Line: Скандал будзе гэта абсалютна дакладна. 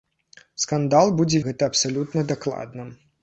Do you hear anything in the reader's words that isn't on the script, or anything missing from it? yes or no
no